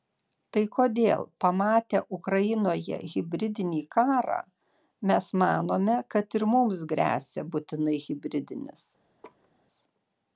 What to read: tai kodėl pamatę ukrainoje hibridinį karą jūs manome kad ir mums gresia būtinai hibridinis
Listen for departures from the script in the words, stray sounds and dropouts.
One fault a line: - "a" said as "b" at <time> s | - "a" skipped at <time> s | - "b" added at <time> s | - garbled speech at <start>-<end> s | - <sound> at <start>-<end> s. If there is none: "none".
- "jūs" said as "mes" at 5.1 s
- laugh at 9.2-9.5 s